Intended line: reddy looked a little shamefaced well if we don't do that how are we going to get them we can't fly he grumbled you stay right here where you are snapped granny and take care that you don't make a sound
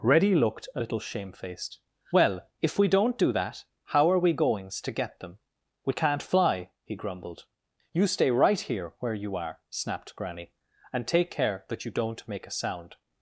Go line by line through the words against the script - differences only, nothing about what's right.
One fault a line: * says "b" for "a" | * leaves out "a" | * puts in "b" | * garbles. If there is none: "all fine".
* says "goings" for "going"